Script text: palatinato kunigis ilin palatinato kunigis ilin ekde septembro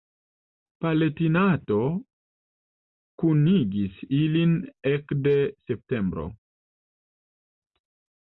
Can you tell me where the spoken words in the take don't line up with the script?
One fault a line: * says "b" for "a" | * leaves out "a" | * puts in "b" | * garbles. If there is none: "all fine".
* leaves out "palatinato kunigis ilin"